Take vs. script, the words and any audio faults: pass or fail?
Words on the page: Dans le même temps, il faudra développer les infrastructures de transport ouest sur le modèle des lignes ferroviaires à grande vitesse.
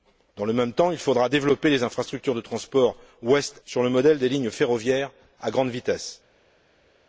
pass